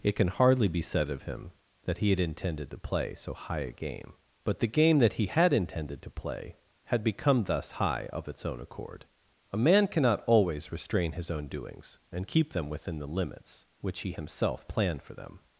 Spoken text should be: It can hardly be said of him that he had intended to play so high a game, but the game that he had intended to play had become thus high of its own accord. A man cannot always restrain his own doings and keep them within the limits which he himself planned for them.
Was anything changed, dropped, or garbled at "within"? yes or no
no